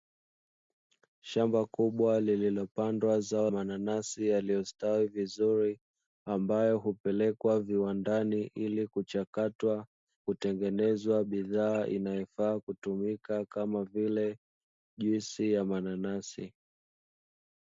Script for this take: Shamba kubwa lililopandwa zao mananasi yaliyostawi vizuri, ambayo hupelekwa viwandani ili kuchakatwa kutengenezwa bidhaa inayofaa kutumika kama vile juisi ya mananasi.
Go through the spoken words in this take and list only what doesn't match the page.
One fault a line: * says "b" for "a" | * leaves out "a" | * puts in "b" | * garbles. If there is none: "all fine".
all fine